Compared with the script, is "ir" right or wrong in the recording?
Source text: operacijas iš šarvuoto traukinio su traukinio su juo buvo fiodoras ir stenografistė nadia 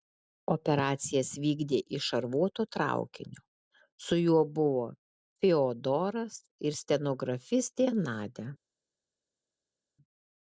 right